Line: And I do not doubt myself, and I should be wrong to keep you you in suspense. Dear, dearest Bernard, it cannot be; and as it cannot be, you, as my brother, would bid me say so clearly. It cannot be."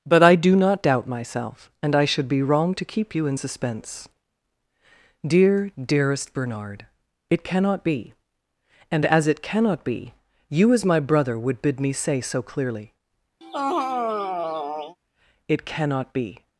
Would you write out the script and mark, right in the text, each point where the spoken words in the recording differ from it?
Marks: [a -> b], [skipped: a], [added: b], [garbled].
[And -> But] I do not doubt myself, and I should be wrong to keep you [skipped: you] in suspense. Dear, dearest Bernard, it cannot be; and as it cannot be, you, as my brother, would bid me say so clearly. It cannot be."